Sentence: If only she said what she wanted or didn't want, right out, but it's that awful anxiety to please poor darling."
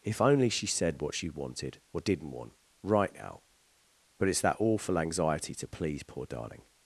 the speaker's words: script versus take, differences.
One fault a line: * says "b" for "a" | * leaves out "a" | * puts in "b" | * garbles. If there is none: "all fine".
all fine